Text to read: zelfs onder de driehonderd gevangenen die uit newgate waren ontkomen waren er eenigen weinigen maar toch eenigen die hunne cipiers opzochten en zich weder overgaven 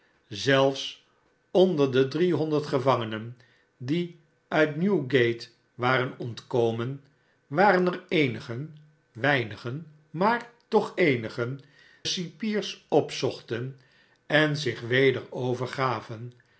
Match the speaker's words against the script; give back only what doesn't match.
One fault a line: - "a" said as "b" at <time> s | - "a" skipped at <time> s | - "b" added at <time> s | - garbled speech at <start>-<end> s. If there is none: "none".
- "die hunne" skipped at 11.6 s